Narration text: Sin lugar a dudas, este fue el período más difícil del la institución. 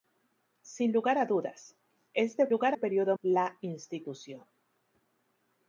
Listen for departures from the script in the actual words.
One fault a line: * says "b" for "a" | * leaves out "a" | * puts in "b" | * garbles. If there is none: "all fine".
* says "lugar" for "fue"
* leaves out "más difícil del"